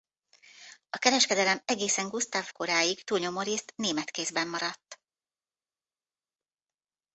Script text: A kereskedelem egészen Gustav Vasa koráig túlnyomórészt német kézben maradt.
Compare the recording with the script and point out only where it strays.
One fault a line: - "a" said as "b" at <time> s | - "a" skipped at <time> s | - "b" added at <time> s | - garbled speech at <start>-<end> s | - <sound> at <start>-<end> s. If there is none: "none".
- "Vasa" skipped at 2.5 s